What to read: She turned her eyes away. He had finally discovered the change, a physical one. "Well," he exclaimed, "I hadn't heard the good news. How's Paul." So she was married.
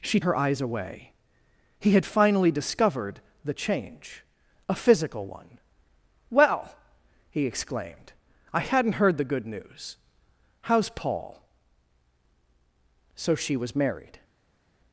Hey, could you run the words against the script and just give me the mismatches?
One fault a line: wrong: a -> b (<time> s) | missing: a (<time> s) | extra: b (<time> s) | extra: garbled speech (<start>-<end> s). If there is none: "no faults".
missing: turned (0.2 s)